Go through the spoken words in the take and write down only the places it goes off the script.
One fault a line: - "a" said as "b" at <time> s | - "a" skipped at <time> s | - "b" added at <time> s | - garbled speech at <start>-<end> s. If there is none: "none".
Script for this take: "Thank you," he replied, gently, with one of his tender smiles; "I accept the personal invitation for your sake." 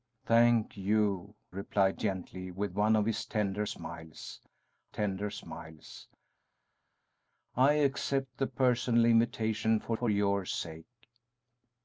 - "he" skipped at 1.4 s
- "tender smiles" added at 4.9 s
- "for" added at 9.9 s